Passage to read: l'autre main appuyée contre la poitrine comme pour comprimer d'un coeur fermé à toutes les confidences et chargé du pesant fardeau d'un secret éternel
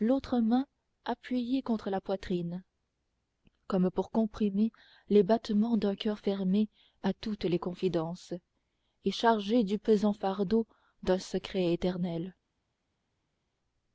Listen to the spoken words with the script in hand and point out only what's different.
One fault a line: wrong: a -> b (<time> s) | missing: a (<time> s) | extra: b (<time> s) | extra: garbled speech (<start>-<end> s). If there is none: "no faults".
extra: les battements (5.1 s)